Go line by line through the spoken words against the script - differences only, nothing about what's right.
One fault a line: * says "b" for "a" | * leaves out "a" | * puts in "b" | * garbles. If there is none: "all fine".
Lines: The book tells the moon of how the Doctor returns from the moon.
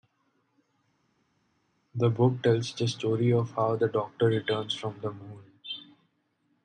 * says "story" for "moon"